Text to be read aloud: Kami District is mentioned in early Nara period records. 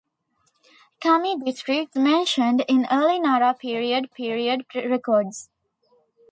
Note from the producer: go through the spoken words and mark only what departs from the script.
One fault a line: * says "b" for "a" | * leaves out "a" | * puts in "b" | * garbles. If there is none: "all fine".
* leaves out "is"
* puts in "period"